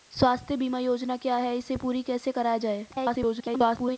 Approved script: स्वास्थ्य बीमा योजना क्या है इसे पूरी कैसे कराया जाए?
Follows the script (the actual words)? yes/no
no